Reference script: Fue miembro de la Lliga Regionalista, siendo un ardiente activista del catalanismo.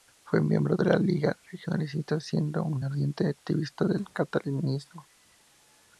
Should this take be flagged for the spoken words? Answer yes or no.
no